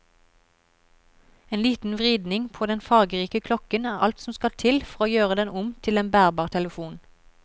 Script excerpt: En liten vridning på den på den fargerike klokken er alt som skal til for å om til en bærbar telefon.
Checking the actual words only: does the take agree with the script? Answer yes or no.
no